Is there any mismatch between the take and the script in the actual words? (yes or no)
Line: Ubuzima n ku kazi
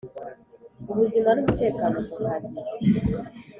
yes